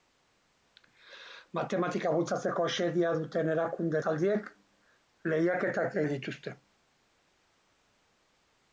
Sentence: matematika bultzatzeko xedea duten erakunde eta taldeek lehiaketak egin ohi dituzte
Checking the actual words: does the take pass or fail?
fail